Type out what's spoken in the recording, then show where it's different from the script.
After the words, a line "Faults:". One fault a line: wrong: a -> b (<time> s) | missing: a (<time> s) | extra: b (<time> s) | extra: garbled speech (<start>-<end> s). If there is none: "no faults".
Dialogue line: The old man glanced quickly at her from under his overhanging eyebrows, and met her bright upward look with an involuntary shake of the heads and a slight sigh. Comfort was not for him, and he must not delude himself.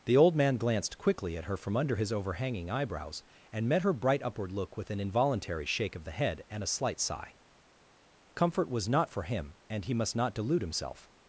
The old man glanced quickly at her from under his overhanging eyebrows, and met her bright upward look with an involuntary shake of the head and a slight sigh. Comfort was not for him, and he must not delude himself.
Faults:
wrong: heads -> head (6.2 s)